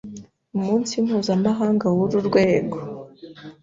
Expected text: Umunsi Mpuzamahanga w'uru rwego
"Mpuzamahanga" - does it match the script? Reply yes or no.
yes